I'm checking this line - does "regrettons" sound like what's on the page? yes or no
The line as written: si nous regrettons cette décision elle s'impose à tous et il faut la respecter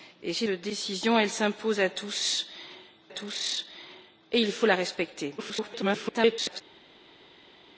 no